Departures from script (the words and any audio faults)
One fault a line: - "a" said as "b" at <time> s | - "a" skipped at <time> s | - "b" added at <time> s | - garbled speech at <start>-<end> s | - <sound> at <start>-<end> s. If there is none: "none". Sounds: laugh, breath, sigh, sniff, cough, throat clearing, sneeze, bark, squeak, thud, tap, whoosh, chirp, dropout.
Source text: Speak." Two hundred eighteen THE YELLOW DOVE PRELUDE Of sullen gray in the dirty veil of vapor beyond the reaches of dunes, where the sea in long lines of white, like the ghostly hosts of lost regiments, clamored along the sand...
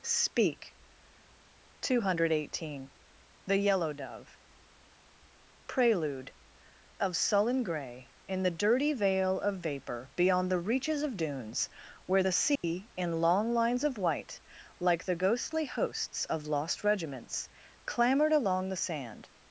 - dropout at 12.6-12.6 s